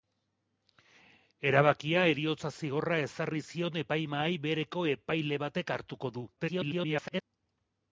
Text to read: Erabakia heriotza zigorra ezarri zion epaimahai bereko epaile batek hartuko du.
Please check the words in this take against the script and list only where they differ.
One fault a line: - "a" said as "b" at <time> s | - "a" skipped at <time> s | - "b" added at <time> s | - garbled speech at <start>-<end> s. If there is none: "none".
- garbled speech at 6.4-7.2 s